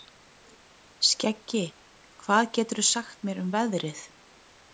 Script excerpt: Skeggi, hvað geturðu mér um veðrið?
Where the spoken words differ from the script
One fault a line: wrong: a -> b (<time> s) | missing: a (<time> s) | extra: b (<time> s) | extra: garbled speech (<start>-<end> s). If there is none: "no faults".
extra: sagt (2.9 s)